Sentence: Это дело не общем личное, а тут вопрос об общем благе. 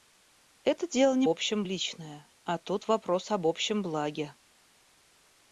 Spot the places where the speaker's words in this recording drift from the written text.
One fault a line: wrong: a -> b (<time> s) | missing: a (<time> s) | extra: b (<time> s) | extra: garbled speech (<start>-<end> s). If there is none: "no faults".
no faults